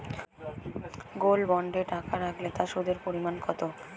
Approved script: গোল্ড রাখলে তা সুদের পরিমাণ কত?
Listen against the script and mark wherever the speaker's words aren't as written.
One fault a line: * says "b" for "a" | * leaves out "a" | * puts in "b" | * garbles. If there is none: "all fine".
* puts in "বন্ডে টাকা"